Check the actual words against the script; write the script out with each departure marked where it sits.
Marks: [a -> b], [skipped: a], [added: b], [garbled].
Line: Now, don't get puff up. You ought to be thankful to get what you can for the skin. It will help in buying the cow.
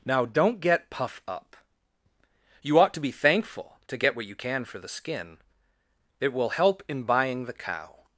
Now, don't get puff up. You ought to be thankful to get what you can for the skin. It will help in buying the cow.